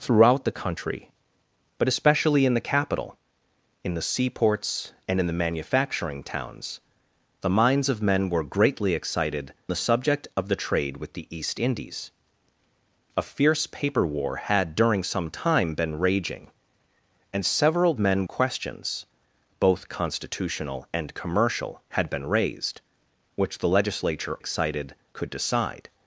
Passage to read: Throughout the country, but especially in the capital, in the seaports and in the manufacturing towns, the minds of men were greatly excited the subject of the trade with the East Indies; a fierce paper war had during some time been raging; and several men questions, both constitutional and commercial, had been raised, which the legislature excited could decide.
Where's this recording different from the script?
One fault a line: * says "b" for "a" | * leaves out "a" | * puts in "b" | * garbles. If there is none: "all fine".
all fine